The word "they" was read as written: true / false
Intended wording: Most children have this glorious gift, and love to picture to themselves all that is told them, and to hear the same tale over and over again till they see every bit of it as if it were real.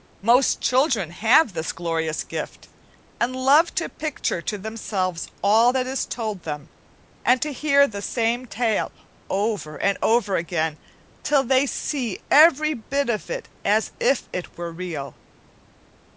true